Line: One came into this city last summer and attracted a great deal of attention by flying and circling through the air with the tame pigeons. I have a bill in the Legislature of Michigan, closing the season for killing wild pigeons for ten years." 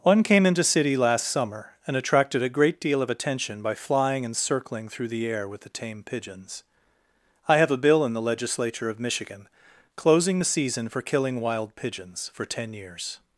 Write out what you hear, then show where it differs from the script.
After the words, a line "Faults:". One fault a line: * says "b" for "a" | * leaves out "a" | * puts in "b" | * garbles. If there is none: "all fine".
One came into city last summer and attracted a great deal of attention by flying and circling through the air with the tame pigeons. I have a bill in the Legislature of Michigan, closing the season for killing wild pigeons for ten years."
Faults:
* leaves out "this"